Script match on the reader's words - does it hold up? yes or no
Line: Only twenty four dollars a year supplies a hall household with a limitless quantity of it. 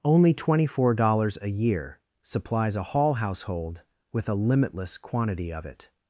yes